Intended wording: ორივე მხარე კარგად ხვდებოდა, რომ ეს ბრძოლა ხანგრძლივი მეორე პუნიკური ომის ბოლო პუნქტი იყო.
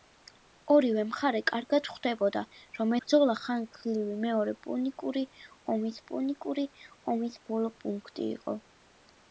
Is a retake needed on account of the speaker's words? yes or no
yes